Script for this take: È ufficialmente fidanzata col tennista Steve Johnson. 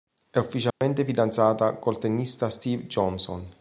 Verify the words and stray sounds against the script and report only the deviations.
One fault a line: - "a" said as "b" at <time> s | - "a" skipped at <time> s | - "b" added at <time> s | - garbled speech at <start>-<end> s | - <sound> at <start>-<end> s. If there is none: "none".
- dropout at 0.7-0.8 s